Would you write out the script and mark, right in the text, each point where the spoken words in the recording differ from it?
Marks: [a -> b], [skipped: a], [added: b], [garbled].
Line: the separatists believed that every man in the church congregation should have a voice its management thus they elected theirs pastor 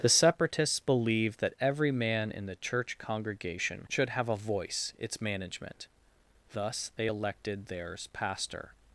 the separatists believed that every man in the church congregation should have a voice its management thus they elected theirs pastor